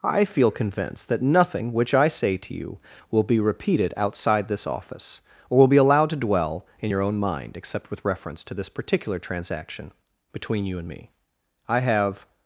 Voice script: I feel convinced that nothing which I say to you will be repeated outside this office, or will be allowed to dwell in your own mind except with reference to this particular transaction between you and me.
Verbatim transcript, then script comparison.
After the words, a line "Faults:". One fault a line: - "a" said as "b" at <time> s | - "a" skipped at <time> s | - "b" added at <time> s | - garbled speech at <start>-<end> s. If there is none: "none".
I feel convinced that nothing which I say to you will be repeated outside this office, or will be allowed to dwell in your own mind except with reference to this particular transaction between you and me. I have
Faults:
- "I have" added at 11.7 s